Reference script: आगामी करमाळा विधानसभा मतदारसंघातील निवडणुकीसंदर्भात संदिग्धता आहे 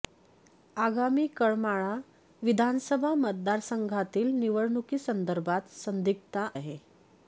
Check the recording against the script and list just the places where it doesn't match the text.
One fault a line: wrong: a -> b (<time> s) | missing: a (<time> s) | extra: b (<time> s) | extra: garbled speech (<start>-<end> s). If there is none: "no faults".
no faults